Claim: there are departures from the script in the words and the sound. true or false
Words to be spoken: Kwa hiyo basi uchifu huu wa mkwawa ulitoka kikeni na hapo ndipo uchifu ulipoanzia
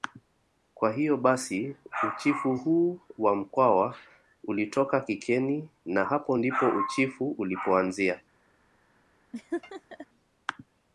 true